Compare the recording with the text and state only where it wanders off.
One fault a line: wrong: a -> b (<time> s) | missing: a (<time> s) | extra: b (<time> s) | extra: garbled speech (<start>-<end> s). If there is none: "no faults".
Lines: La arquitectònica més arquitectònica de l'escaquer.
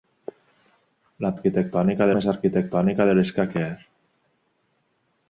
no faults